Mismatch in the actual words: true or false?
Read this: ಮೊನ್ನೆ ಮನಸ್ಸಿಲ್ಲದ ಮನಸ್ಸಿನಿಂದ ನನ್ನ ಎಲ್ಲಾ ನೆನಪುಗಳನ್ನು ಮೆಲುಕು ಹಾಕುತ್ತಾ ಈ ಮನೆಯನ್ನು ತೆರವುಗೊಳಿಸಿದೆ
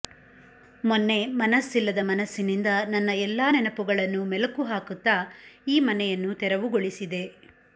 false